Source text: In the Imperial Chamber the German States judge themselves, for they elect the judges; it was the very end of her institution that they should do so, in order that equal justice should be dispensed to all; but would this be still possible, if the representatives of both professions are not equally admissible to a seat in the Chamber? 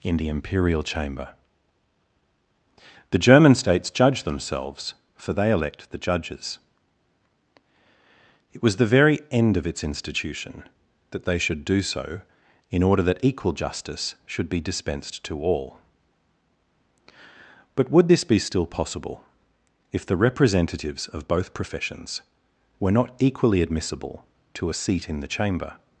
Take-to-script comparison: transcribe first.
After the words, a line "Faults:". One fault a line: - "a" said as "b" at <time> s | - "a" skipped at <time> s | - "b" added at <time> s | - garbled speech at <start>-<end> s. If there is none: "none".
In the Imperial Chamber the German States judge themselves, for they elect the judges; it was the very end of its institution that they should do so, in order that equal justice should be dispensed to all; but would this be still possible, if the representatives of both professions were not equally admissible to a seat in the Chamber?
Faults:
- "her" said as "its" at 9.7 s
- "are" said as "were" at 22.8 s